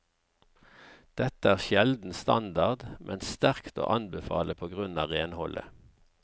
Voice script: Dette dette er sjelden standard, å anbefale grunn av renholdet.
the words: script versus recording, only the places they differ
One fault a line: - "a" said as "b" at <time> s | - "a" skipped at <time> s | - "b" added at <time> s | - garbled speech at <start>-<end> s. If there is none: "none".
- "dette" skipped at 1.5 s
- "men sterkt" added at 3.1 s
- "på" added at 4.6 s